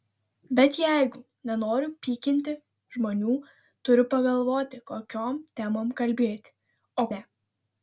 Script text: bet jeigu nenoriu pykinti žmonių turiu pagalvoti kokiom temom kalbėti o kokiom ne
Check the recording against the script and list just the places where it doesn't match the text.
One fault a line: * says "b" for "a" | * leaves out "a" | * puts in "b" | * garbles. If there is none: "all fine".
* leaves out "kokiom"